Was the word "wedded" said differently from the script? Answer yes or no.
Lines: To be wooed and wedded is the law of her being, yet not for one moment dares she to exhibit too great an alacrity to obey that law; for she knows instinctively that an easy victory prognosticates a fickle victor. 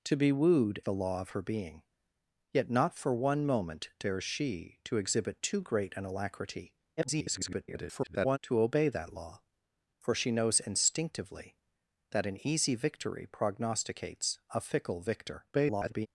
yes